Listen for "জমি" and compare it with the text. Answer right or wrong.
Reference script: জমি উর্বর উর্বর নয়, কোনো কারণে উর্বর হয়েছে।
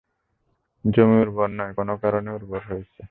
right